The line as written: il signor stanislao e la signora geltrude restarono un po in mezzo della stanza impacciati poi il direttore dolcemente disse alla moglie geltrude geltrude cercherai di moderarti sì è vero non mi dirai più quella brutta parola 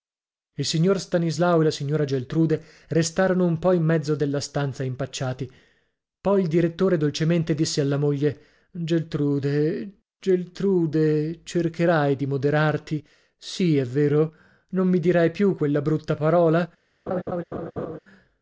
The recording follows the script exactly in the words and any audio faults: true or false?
false